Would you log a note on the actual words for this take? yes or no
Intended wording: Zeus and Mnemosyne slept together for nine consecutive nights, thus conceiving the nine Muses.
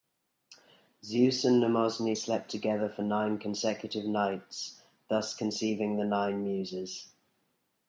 no